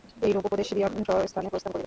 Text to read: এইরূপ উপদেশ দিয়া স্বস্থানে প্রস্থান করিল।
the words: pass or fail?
pass